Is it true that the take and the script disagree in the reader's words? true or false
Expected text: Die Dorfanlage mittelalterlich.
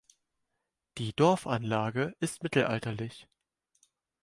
true